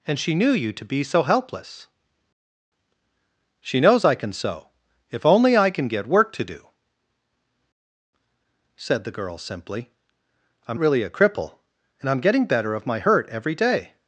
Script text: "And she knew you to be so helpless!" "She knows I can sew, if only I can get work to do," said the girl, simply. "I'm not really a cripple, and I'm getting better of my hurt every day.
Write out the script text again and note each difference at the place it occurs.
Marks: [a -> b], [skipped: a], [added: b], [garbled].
"And she knew you to be so helpless!" "She knows I can sew, if only I can get work to do," said the girl, simply. "I'm [skipped: not] really a cripple, and I'm getting better of my hurt every day.